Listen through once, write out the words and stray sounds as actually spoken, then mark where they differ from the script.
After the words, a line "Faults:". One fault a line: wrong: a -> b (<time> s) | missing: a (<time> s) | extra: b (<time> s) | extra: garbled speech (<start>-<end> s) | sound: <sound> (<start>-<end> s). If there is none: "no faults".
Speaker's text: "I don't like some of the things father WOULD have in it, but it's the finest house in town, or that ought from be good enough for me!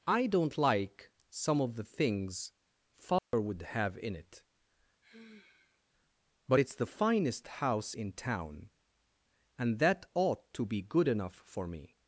"I don't like some of the things father WOULD have in it, but it's the finest house in town, and that ought to be good enough for me!
Faults:
sound: dropout (3.2-3.3 s)
sound: sigh (5.0-5.8 s)
wrong: or -> and (9.6 s)
wrong: from -> to (10.5 s)